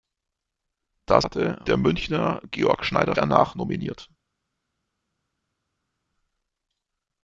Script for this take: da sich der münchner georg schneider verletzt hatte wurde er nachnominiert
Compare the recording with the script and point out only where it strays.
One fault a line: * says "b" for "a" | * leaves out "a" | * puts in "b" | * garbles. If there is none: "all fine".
* says "hatte" for "sich"
* leaves out "verletzt hatte wurde"